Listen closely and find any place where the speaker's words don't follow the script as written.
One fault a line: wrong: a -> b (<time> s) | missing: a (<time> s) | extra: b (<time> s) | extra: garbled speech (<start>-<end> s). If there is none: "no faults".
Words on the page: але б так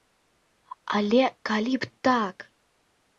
extra: калі (1.5 s)